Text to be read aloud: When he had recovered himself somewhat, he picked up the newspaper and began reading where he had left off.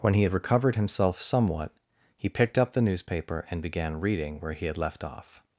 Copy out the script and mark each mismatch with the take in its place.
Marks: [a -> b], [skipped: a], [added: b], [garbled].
When he had recovered himself somewhat, he picked up the newspaper and began reading where he had left off.